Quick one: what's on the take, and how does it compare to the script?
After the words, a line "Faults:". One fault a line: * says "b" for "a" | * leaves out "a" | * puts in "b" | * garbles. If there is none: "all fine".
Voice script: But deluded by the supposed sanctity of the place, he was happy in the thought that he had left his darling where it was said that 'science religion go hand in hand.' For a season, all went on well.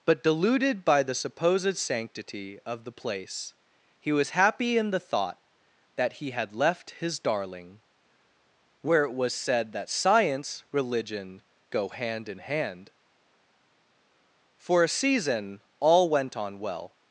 But deluded by the supposed sanctity of the place, he was happy in the thought that he had left his darling where it was said that 'science religion go hand in hand.' For a season, all went on well.
Faults:
all fine